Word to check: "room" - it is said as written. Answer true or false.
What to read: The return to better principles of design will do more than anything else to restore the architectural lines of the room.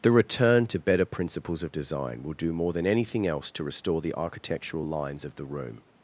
true